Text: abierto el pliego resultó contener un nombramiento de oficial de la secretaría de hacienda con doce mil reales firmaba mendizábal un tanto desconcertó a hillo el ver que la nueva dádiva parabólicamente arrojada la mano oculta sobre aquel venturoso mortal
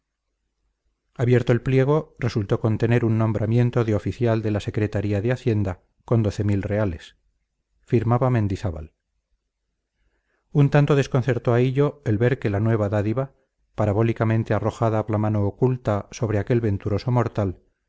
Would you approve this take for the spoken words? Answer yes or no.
yes